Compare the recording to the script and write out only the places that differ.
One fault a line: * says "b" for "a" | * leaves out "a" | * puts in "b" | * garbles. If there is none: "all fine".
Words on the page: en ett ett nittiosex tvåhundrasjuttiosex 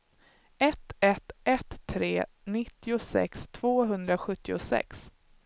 * says "ett" for "en"
* puts in "tre"